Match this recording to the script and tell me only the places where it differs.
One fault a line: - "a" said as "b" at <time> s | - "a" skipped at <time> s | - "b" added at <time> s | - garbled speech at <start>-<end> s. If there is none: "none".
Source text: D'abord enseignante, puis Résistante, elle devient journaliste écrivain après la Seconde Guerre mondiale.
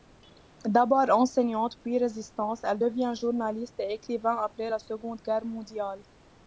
- "et" added at 3.8 s